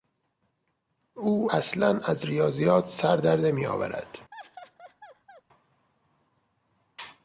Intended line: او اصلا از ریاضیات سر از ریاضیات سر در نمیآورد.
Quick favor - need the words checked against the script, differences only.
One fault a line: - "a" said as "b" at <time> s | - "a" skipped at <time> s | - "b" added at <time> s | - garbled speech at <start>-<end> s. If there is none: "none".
- "از ریاضیات سر" skipped at 3.2 s